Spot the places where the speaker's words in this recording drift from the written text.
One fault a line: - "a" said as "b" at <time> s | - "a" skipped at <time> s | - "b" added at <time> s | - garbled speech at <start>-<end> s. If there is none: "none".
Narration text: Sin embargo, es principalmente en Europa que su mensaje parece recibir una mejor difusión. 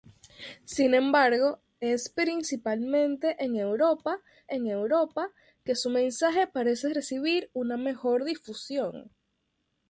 - "en Europa" added at 4.5 s